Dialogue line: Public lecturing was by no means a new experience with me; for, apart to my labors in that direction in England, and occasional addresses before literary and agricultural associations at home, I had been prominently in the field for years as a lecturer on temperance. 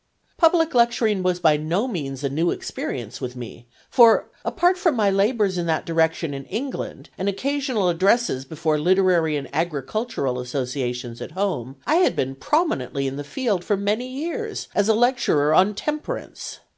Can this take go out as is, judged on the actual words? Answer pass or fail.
fail